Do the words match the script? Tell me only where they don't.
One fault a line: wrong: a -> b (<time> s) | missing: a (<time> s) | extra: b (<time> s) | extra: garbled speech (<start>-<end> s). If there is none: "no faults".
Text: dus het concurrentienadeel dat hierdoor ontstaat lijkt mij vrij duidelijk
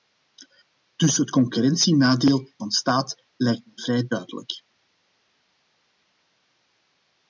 missing: dat hierdoor (2.5 s)